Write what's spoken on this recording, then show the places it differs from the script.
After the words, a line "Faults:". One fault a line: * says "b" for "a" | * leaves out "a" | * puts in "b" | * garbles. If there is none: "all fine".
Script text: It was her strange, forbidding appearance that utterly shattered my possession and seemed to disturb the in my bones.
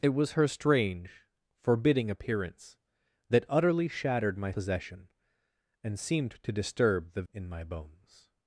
It was her strange, forbidding appearance that utterly shattered my possession and seemed to disturb the in my bones.
Faults:
all fine